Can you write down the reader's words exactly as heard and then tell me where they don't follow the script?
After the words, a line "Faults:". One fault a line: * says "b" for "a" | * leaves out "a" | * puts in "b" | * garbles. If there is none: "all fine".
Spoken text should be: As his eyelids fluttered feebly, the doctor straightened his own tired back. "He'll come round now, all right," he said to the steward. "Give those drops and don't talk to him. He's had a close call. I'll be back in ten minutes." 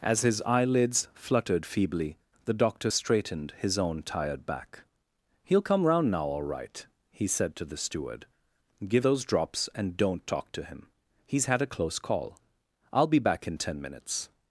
As his eyelids fluttered feebly, the doctor straightened his own tired back. "He'll come round now, all right," he said to the steward. "Give those drops and don't talk to him. He's had a close call. I'll be back in ten minutes."
Faults:
all fine